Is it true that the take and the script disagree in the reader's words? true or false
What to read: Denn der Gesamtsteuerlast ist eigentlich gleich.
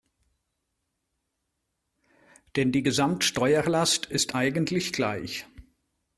true